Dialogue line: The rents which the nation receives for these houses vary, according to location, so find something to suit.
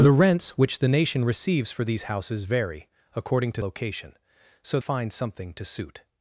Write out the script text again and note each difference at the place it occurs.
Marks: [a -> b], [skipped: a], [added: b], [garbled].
The rents which the nation receives for these houses vary, according to location, so find something to suit.